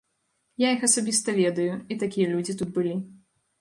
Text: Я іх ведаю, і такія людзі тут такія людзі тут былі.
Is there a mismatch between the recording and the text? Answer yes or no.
yes